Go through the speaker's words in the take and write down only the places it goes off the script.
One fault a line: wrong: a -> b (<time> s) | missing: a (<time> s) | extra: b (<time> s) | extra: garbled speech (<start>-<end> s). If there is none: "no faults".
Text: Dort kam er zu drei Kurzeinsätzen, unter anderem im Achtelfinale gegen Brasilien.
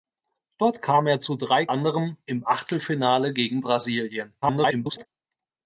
missing: Kurzeinsätzen unter (1.7 s)
extra: garbled speech (4.4-5.1 s)